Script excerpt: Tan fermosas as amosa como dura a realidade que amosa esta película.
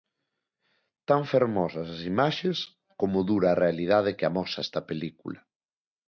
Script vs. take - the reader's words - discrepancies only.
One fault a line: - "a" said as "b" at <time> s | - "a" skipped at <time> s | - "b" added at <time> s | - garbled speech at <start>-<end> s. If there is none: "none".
- "amosa" said as "imaxes" at 2.1 s